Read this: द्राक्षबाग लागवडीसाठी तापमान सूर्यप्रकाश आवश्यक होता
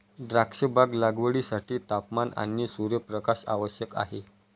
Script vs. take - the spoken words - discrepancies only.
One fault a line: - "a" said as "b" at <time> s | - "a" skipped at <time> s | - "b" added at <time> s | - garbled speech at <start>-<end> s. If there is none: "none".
- "आणि" added at 2.4 s
- "होता" said as "आहे" at 4.0 s